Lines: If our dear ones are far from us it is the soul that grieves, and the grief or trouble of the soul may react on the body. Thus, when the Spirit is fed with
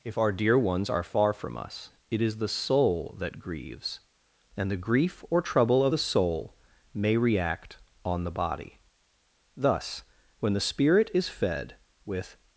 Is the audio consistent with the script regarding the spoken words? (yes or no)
yes